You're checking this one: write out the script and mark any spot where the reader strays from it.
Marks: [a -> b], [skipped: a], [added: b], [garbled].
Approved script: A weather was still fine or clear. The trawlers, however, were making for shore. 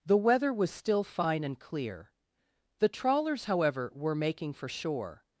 [A -> The] weather was still fine [or -> and] clear. The trawlers, however, were making for shore.